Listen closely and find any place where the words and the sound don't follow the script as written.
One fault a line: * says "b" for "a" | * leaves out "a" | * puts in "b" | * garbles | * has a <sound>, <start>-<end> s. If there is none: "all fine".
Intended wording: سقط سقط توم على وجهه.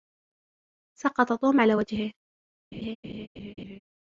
* leaves out "سقط"
* has a laugh, 2.7-3.8 s